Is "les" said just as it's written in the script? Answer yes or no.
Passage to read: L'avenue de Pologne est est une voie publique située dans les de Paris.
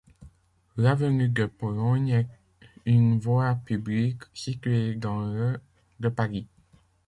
no